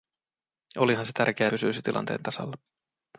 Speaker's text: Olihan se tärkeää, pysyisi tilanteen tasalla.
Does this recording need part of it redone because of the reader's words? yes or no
no